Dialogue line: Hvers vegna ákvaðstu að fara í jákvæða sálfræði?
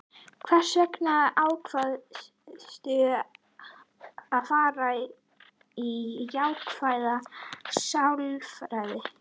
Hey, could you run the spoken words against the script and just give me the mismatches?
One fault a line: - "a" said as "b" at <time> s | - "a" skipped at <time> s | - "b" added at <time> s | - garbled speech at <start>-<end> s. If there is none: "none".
none